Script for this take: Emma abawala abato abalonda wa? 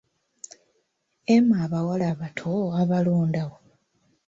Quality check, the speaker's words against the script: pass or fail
pass